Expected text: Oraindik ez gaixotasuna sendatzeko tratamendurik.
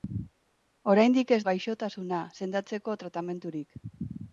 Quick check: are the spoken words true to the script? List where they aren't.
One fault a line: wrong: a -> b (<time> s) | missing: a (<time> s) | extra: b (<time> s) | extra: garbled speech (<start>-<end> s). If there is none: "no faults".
no faults